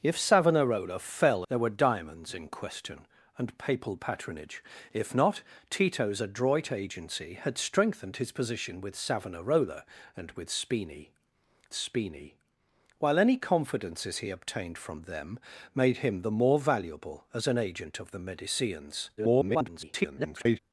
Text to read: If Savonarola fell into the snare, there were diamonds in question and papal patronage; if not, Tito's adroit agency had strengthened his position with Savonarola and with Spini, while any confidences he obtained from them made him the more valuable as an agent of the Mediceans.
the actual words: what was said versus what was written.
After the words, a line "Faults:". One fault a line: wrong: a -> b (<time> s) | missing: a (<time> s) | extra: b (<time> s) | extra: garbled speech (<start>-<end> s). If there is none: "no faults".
If Savonarola fell there were diamonds in question and papal patronage; if not, Tito's adroit agency had strengthened his position with Savonarola and with Spini Spini, while any confidences he obtained from them made him the more valuable as an agent of the Mediceans. [garbled]
Faults:
missing: into the snare (1.4 s)
extra: Spini (11.7 s)
extra: garbled speech (19.2-20.6 s)